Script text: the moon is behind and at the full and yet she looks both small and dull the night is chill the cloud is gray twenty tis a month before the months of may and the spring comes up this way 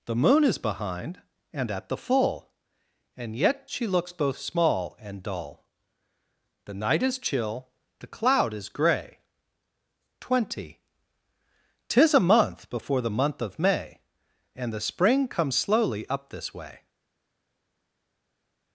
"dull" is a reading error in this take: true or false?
false